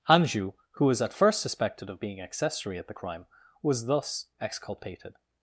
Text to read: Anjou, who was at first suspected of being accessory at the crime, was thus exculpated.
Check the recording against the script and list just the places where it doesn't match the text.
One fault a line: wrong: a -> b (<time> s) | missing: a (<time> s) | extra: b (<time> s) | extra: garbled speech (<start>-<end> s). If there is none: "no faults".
no faults